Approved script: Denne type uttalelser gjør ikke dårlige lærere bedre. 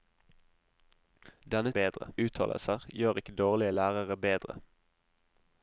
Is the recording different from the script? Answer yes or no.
yes